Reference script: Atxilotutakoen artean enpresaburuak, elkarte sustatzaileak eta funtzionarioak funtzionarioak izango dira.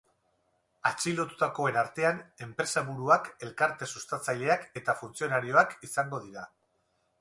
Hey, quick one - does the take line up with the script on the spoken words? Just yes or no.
no